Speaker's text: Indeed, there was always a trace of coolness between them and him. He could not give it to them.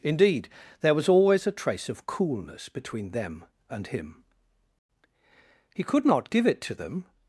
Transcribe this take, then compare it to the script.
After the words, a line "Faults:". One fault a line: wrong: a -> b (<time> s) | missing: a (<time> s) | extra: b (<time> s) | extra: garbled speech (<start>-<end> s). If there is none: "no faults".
Indeed, there was always a trace of coolness between them and him. He could not give it to them.
Faults:
no faults